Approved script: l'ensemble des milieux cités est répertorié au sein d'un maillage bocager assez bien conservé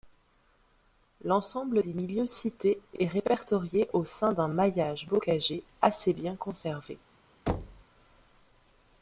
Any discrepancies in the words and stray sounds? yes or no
yes